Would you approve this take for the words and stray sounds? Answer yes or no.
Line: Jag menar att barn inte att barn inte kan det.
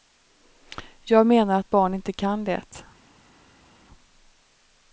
no